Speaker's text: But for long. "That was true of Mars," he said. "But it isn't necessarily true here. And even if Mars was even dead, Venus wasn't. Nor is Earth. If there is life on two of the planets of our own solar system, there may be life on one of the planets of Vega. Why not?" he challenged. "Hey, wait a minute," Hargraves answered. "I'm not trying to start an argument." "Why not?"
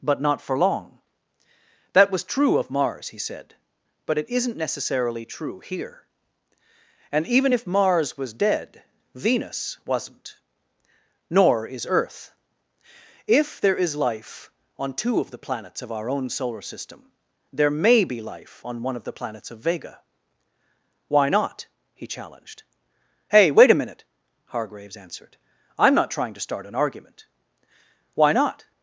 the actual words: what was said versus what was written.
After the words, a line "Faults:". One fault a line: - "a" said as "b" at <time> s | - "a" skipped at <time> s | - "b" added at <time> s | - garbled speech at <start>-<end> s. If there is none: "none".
But not for long. "That was true of Mars," he said. "But it isn't necessarily true here. And even if Mars was dead, Venus wasn't. Nor is Earth. If there is life on two of the planets of our own solar system, there may be life on one of the planets of Vega. Why not?" he challenged. "Hey, wait a minute," Hargraves answered. "I'm not trying to start an argument." "Why not?"
Faults:
- "not" added at 0.2 s
- "even" skipped at 8.3 s